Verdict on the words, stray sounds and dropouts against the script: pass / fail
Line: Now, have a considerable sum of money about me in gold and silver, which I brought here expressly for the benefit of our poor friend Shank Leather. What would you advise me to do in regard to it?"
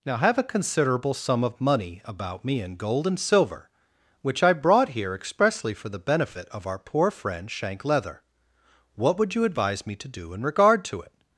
pass